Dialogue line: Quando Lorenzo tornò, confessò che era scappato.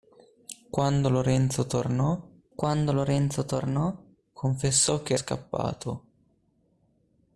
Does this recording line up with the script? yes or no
no